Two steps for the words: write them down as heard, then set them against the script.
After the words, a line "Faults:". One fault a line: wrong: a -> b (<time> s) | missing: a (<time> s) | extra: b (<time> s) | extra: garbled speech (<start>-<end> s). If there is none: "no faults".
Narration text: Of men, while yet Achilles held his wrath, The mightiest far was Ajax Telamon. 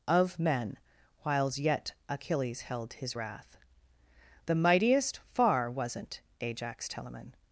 Of men, whiles yet Achilles held his wrath, The mightiest far wasn't Ajax Telamon.
Faults:
wrong: while -> whiles (1.2 s)
wrong: was -> wasn't (5.7 s)